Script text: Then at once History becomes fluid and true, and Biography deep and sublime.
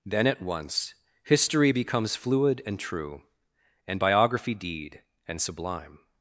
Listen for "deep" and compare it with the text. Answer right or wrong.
wrong